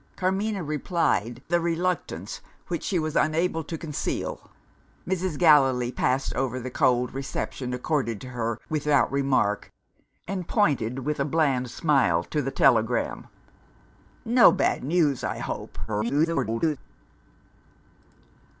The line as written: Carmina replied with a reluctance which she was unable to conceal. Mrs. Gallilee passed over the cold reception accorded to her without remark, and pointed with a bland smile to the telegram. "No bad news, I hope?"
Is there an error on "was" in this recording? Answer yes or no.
no